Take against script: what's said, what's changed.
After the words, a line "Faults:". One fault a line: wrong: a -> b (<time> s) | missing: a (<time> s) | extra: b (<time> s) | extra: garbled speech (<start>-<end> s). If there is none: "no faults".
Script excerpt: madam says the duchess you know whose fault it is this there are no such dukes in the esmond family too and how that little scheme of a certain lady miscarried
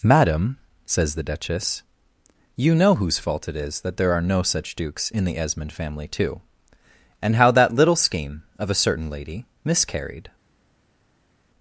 madam says the duchess you know whose fault it is that there are no such dukes in the esmond family too and how that little scheme of a certain lady miscarried
Faults:
wrong: this -> that (3.8 s)